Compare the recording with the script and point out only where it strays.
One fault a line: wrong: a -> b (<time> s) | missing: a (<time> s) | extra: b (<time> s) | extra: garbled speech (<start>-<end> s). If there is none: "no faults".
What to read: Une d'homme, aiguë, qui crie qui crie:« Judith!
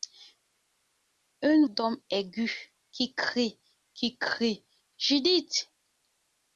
no faults